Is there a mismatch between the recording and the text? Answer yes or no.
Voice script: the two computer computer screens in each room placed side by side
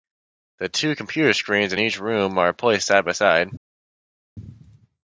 yes